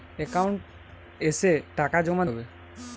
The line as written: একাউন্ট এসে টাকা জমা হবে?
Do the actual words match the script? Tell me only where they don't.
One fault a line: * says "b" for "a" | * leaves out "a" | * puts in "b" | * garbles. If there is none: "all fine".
all fine